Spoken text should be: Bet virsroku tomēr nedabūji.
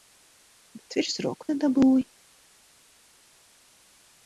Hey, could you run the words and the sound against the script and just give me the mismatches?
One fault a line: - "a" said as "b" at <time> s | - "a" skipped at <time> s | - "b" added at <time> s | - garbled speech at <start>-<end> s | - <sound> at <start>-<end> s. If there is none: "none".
- "tomēr" skipped at 1.5 s